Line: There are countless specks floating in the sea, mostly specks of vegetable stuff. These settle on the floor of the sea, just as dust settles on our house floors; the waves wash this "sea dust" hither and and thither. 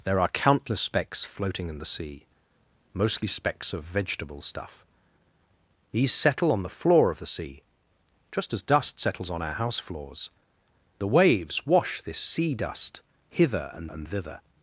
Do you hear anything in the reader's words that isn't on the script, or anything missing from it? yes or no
no